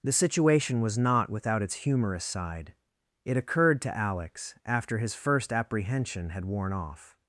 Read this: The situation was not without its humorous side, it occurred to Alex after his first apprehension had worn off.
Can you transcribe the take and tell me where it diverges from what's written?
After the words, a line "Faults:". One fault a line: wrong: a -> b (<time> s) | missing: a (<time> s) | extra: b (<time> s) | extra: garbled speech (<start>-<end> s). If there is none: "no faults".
The situation was not without its humorous side, it occurred to Alex after his first apprehension had worn off.
Faults:
no faults